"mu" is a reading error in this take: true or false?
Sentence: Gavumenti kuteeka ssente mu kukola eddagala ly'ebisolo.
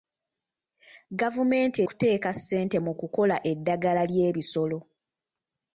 false